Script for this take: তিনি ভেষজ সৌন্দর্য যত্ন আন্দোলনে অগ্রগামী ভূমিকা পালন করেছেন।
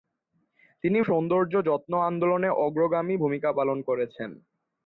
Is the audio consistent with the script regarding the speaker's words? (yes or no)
no